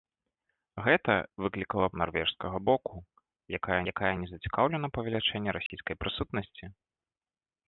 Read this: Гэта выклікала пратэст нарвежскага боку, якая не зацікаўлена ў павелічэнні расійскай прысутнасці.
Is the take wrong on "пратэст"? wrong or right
wrong